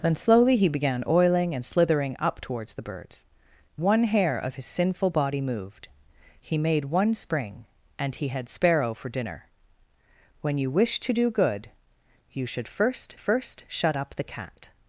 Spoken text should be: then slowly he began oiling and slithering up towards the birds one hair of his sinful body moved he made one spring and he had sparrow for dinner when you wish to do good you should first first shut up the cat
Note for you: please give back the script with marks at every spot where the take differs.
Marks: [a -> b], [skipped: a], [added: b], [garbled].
then slowly he began oiling and slithering up towards the birds one hair of his sinful body moved he made one spring and he had sparrow for dinner when you wish to do good you should first first shut up the cat